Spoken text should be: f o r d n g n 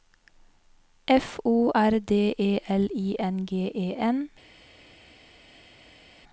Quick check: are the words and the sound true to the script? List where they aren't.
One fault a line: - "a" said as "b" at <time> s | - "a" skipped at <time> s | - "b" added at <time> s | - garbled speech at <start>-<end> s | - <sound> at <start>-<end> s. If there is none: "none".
- "e l i" added at 2.4 s
- "e" added at 3.7 s